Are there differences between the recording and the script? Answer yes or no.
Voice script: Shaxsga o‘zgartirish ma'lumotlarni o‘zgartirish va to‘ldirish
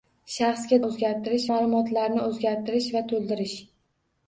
no